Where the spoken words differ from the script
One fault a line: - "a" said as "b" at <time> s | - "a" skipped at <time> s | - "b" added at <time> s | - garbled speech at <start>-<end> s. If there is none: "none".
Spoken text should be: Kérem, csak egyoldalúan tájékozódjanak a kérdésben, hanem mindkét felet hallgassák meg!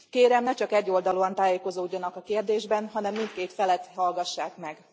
- "ne" added at 0.4 s